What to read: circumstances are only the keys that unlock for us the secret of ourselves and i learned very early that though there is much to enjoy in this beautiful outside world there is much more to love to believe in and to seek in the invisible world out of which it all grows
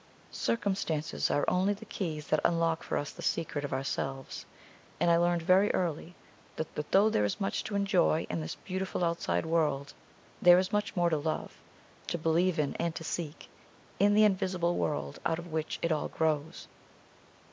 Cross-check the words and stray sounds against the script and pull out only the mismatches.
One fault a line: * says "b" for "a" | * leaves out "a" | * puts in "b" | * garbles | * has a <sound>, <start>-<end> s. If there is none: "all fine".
* puts in "that"